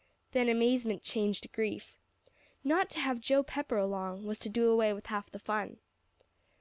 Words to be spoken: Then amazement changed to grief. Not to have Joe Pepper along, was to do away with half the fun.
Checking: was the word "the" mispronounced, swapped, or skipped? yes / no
no